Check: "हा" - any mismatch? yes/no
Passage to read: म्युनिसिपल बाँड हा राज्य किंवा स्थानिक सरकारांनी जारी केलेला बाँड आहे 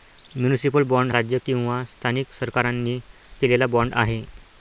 yes